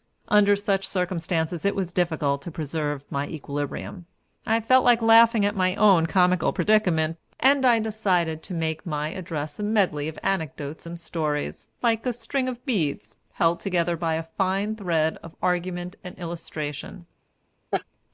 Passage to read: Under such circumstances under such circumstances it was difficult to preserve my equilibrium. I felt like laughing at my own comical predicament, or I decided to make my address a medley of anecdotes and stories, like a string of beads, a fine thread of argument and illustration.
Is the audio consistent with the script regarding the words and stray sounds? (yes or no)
no